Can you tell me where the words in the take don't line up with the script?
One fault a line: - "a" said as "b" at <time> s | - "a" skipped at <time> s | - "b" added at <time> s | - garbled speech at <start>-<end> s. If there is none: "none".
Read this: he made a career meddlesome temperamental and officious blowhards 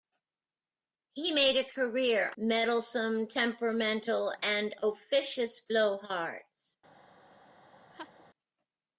none